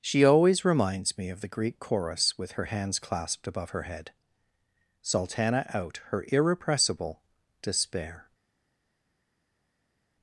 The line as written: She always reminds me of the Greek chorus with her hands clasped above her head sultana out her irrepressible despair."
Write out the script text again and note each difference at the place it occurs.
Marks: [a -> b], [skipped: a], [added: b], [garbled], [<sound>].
She always reminds me of the Greek chorus with her hands clasped above her head sultana out her irrepressible despair."